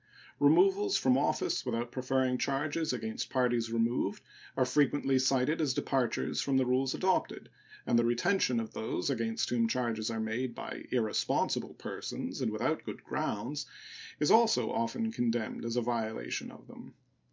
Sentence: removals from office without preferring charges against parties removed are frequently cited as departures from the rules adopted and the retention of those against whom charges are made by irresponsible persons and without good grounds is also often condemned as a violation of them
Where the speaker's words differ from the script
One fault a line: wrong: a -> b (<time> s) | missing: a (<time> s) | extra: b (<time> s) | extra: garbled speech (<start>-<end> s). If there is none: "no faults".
no faults